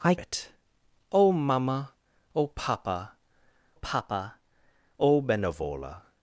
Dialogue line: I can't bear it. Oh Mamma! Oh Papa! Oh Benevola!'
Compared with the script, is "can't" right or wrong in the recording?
wrong